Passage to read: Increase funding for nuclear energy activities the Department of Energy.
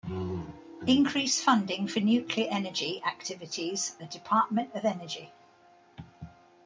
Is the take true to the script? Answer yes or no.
yes